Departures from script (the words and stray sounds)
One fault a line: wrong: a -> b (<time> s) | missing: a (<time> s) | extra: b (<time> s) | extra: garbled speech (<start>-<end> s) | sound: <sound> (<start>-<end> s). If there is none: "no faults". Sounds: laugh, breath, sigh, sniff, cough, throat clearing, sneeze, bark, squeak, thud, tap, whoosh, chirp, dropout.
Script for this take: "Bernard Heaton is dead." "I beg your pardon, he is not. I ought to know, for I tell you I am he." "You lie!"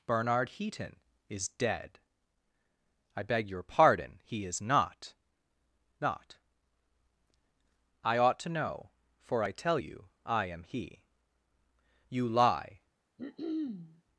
extra: not (6.0 s)
sound: throat clearing (13.2-14.0 s)